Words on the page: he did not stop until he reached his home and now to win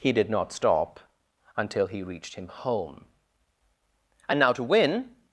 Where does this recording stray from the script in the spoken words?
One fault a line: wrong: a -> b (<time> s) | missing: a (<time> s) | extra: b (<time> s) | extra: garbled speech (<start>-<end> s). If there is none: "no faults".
wrong: his -> him (2.3 s)